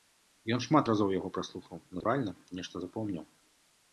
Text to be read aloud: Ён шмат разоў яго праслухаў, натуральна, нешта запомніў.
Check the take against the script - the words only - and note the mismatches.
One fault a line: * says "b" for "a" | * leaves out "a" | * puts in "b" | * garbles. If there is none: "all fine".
all fine